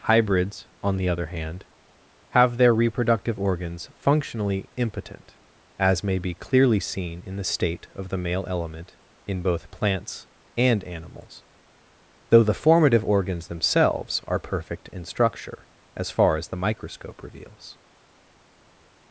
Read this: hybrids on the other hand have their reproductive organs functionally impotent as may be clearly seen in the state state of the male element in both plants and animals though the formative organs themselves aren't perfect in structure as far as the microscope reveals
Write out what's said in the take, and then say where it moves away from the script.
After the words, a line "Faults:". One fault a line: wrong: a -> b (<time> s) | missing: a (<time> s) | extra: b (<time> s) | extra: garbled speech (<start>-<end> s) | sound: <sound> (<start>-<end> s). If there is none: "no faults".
hybrids on the other hand have their reproductive organs functionally impotent as may be clearly seen in the state of the male element in both plants and animals though the formative organs themselves are perfect in structure as far as the microscope reveals
Faults:
missing: state (7.9 s)
wrong: aren't -> are (14.3 s)